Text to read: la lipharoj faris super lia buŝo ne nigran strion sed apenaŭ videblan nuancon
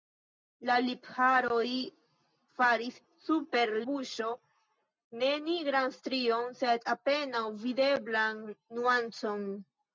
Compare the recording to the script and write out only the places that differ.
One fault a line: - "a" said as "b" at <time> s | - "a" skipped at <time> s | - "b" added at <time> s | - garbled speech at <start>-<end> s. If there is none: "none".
- "lia" skipped at 3.7 s